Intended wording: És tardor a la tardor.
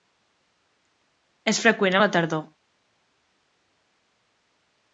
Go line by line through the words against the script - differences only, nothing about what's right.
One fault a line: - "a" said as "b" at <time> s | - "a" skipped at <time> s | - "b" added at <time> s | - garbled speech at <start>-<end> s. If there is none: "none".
- "tardor" said as "freqüent" at 1.6 s